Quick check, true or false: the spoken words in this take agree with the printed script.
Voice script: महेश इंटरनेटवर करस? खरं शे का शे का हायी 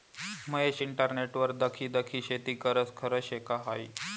false